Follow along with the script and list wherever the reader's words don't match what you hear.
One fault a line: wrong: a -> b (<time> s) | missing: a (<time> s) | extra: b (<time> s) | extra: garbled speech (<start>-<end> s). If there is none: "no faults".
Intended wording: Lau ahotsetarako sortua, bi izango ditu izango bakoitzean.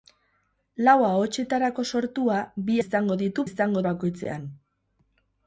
no faults